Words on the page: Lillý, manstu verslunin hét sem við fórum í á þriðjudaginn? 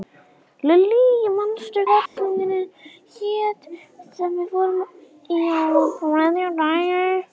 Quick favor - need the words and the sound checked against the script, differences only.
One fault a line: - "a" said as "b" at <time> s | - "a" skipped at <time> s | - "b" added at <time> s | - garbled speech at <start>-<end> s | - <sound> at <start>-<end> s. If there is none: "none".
- dropout at 2.1-2.2 s